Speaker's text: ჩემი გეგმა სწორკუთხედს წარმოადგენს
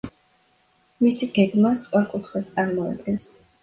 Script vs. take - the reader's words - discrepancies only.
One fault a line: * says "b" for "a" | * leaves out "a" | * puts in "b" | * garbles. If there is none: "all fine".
* says "მისი" for "ჩემი"